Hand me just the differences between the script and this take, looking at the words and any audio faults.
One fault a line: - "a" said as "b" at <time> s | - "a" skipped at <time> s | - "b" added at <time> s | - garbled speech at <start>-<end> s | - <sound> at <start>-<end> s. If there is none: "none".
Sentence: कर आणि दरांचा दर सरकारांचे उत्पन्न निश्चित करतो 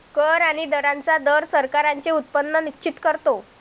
none